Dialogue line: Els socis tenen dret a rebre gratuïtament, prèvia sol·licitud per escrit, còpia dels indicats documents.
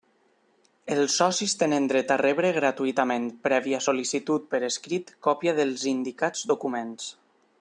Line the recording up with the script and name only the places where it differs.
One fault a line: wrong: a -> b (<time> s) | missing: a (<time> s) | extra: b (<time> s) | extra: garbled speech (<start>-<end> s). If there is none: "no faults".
no faults